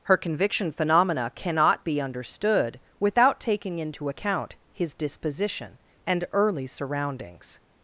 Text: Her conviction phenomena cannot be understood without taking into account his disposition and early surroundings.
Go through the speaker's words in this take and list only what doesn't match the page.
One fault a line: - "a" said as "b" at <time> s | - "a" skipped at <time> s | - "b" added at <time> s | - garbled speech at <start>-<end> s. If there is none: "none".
none